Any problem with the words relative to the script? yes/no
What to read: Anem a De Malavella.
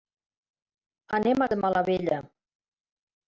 no